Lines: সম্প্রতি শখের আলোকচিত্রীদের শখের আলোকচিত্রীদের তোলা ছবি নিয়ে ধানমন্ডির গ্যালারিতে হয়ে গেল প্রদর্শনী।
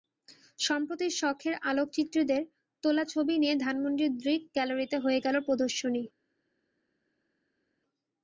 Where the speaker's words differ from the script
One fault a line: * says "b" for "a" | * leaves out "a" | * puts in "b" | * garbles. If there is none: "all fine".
* leaves out "শখের আলোকচিত্রীদের"
* puts in "দৃক"